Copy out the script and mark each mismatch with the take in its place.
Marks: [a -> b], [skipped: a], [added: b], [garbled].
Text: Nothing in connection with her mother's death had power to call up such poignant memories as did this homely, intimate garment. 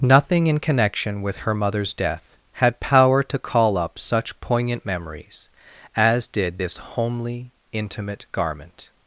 Nothing in connection with her mother's death had power to call up such poignant memories as did this homely, intimate garment.